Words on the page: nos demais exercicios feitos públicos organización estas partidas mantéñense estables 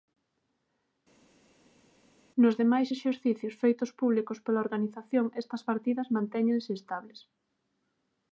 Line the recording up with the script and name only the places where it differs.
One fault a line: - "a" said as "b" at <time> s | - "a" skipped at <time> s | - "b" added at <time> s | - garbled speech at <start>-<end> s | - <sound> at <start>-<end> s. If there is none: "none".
- "pola" added at 4.4 s